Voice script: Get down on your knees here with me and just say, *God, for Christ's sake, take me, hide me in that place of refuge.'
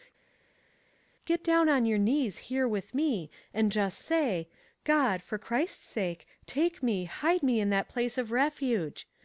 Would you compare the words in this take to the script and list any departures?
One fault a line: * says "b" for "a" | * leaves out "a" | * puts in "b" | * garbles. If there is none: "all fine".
all fine